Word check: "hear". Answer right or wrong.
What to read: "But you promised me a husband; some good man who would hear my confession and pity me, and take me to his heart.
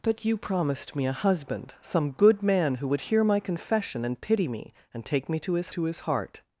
right